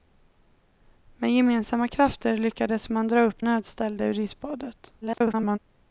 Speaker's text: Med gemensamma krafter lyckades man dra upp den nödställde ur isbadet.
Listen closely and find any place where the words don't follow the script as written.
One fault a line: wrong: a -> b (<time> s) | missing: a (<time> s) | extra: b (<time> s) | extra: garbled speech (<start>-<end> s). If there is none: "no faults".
missing: den (3.4 s)
extra: garbled speech (5.0-5.6 s)